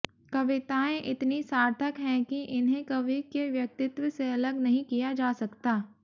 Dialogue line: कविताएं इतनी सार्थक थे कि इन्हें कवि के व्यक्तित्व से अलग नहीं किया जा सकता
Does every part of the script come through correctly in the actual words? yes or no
no